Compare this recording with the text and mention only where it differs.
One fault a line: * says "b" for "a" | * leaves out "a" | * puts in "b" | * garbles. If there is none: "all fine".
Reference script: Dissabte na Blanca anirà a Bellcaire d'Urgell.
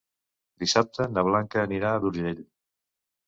* leaves out "Bellcaire"